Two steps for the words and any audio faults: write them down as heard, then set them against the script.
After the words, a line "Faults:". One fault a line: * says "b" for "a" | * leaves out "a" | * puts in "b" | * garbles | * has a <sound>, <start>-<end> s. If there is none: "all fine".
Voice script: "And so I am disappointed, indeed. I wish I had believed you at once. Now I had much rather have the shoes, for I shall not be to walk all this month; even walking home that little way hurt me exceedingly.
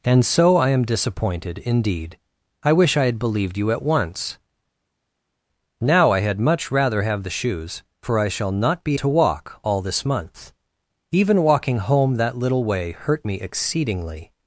"And so I am disappointed, indeed. I wish I had believed you at once. Now I had much rather have the shoes, for I shall not be to walk all this month; even walking home that little way hurt me exceedingly.
Faults:
all fine